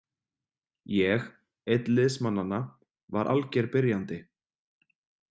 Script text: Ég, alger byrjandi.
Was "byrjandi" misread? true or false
false